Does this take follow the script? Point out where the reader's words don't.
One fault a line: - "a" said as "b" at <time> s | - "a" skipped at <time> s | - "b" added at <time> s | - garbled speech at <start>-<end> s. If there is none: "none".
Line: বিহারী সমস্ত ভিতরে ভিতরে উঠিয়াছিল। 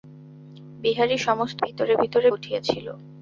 none